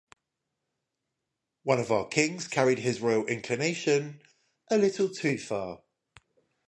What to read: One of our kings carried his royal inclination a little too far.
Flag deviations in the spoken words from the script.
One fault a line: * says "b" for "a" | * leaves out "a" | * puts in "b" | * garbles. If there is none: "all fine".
all fine